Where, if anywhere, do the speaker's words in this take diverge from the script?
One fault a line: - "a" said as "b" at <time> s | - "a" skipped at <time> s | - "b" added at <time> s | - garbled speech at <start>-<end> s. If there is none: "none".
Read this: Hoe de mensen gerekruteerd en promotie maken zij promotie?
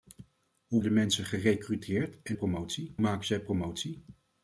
none